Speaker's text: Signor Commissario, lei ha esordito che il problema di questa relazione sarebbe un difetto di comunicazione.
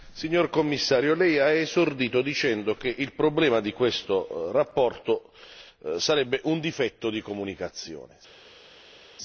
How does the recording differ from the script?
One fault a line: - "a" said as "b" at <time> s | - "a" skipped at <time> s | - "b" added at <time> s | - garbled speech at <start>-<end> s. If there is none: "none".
- "dicendo" added at 2.2 s